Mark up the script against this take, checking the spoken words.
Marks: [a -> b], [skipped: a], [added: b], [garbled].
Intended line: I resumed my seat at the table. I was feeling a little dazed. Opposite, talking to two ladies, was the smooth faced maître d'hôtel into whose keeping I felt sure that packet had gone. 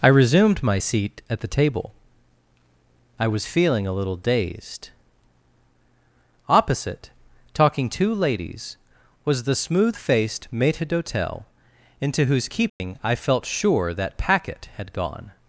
I resumed my seat at the table. I was feeling a little dazed. Opposite, talking [skipped: to] two ladies, was the smooth faced maître d'hôtel into whose keeping I felt sure that packet had gone.